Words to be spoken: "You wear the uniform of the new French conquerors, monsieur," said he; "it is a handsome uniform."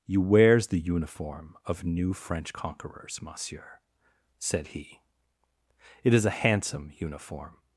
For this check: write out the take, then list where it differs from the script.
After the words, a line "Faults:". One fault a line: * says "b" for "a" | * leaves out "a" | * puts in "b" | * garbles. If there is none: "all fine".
"You wears the uniform of new French conquerors, monsieur," said he; "it is a handsome uniform."
Faults:
* says "wears" for "wear"
* leaves out "the"